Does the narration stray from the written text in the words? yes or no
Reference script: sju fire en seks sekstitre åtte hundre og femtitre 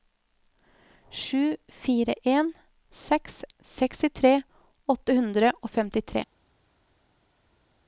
no